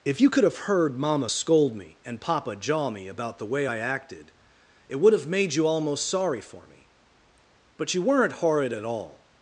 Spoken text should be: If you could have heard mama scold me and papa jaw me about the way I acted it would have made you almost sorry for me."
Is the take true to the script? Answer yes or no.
no